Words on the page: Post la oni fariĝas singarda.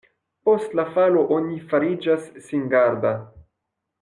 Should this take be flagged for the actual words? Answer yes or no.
yes